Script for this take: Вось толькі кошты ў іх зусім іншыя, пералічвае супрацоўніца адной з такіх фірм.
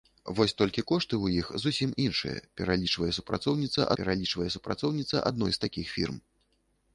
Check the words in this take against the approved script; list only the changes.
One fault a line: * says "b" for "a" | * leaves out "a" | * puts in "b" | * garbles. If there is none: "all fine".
* puts in "пералічвае супрацоўніца"